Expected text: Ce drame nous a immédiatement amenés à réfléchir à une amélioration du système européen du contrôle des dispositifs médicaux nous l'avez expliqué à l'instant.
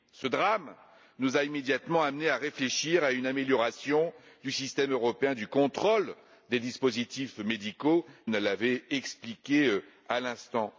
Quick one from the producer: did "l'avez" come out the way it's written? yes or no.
yes